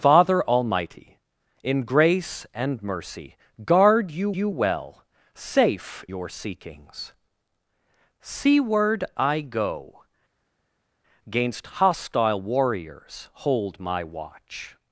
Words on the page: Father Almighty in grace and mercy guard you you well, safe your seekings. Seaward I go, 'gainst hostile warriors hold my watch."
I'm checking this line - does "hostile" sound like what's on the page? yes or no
yes